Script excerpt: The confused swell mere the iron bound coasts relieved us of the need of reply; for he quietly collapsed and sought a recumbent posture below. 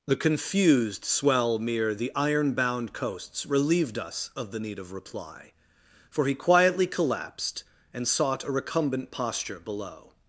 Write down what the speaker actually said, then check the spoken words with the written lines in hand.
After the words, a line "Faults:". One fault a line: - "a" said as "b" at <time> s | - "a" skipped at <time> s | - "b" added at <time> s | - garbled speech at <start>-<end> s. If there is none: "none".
The confused swell mere the iron bound coasts relieved us of the need of reply; for he quietly collapsed and sought a recumbent posture below.
Faults:
none